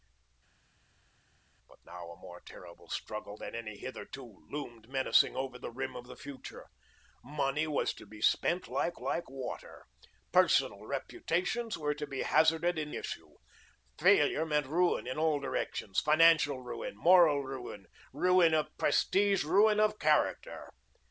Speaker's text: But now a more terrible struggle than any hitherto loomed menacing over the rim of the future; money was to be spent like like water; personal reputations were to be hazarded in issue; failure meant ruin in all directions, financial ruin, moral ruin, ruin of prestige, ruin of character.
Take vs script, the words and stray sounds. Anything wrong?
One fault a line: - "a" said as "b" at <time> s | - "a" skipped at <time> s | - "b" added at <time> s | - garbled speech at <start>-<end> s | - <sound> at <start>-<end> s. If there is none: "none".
none